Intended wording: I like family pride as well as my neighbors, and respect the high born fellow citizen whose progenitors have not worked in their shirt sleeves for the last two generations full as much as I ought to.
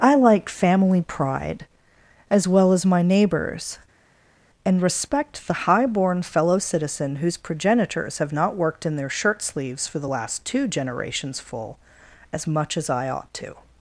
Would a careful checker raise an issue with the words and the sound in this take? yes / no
no